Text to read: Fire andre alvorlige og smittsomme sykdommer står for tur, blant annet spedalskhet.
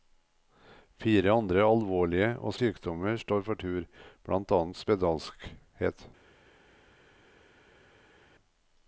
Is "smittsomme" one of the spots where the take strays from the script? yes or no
yes